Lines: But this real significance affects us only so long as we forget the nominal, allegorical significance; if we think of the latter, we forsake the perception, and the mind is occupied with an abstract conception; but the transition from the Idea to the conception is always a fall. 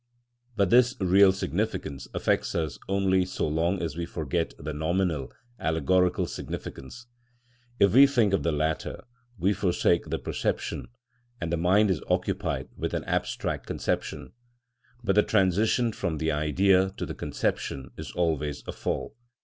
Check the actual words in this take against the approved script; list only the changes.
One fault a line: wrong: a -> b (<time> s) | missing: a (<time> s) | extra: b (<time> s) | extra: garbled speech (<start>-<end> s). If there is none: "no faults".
no faults